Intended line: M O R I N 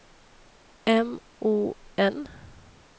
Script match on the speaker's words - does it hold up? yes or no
no